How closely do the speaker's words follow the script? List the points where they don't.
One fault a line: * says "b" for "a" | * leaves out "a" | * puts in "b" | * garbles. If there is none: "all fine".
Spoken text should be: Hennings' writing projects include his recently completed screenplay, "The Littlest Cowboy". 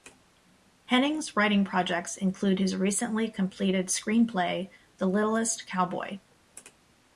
all fine